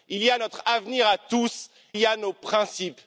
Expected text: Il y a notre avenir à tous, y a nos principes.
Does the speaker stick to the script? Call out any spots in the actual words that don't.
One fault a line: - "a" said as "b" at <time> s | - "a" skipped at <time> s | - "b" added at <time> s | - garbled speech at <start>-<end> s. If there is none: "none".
none